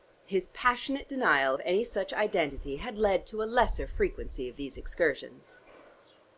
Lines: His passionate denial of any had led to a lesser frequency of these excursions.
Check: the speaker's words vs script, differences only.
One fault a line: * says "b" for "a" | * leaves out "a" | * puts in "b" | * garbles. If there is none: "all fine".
* puts in "such identity"